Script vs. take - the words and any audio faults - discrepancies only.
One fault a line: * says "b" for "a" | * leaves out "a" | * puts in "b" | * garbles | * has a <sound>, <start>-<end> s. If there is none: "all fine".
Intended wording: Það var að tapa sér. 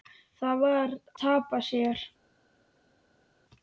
* leaves out "að"